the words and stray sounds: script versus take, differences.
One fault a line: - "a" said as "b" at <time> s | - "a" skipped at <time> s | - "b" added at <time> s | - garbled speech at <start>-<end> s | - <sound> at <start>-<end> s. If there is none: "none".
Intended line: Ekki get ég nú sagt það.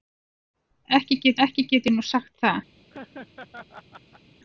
- "ekki get" added at 1.5 s
- laugh at 2.9-4.2 s